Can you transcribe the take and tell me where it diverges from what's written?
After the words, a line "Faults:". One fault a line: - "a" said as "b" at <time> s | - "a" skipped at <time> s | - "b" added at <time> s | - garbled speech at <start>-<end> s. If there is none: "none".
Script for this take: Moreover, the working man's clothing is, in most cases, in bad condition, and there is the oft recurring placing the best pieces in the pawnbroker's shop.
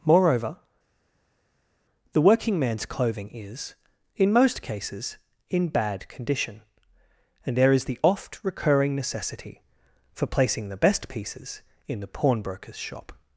Moreover, the working man's clothing is, in most cases, in bad condition, and there is the oft recurring necessity for placing the best pieces in the pawnbroker's shop.
Faults:
- "necessity for" added at 9.0 s